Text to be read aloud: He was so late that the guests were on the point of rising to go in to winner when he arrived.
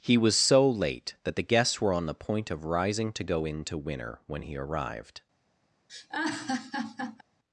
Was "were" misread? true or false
false